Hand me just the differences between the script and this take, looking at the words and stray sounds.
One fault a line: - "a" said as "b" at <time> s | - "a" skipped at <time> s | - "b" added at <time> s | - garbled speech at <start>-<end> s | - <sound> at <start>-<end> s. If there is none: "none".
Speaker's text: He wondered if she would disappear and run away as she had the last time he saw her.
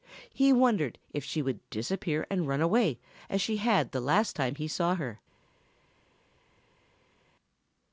none